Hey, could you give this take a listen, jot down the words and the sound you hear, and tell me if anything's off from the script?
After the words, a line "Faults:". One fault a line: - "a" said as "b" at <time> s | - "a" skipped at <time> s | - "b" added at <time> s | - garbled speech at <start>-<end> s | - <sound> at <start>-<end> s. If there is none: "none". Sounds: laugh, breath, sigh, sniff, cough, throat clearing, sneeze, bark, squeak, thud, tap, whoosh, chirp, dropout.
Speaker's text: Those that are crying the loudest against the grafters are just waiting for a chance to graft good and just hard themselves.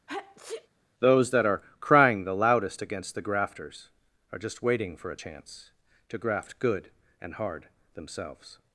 Those that are crying the loudest against the grafters are just waiting for a chance to graft good and hard themselves.
Faults:
- sneeze at 0.1-0.7 s
- "just" skipped at 7.3 s